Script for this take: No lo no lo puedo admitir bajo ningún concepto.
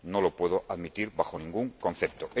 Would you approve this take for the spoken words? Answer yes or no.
no